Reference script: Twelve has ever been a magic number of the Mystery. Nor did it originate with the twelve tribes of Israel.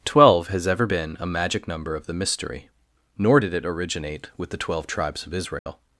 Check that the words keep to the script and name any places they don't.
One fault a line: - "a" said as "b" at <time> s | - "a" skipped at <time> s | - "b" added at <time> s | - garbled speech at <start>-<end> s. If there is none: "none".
none